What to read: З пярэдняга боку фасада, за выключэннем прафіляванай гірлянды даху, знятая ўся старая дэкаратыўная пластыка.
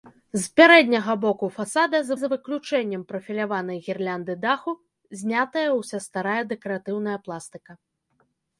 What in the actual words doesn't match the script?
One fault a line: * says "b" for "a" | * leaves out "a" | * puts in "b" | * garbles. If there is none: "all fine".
* puts in "за"